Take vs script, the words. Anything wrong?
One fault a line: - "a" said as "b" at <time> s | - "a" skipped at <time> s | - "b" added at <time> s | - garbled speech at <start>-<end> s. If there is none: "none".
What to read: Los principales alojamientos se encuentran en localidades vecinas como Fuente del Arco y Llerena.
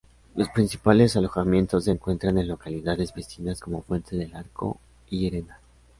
none